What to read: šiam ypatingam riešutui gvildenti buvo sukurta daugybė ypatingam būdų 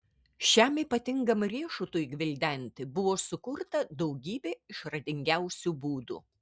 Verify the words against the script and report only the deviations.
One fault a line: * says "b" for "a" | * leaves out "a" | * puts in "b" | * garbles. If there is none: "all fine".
* says "išradingiausių" for "ypatingam"